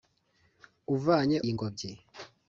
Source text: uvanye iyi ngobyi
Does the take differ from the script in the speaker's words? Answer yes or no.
no